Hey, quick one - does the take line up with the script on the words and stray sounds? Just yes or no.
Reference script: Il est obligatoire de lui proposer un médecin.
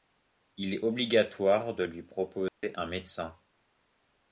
no